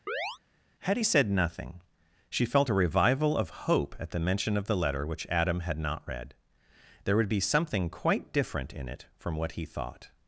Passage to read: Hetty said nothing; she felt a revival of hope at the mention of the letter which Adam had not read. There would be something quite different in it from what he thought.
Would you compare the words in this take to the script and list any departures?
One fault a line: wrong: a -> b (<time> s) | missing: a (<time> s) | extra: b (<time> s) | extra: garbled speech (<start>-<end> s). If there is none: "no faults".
no faults